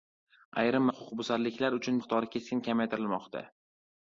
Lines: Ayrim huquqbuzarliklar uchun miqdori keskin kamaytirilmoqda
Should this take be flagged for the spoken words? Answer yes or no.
no